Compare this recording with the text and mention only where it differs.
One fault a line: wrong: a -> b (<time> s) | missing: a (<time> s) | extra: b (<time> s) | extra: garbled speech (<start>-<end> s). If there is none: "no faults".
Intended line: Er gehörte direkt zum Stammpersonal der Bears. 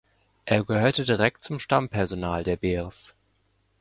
no faults